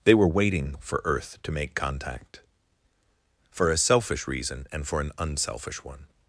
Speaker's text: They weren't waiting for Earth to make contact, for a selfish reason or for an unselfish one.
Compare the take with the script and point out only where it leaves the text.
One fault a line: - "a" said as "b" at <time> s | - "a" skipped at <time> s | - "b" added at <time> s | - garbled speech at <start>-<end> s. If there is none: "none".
- "weren't" said as "were" at 0.1 s
- "or" said as "and" at 4.7 s